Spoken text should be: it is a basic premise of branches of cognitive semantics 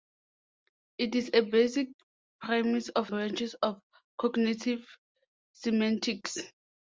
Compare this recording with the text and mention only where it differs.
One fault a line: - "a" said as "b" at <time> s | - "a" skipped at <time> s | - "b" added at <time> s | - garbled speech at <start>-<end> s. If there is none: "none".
none